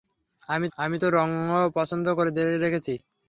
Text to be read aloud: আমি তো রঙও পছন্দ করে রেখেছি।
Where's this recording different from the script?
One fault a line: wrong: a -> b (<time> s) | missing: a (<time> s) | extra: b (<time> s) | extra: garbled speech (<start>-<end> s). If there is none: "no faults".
extra: আমি (0.8 s)